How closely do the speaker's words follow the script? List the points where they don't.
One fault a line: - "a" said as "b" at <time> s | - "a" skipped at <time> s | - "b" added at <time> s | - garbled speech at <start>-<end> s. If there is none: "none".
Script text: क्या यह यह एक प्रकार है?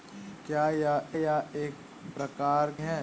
none